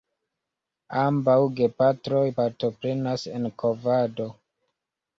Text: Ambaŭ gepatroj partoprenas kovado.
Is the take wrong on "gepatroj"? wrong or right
right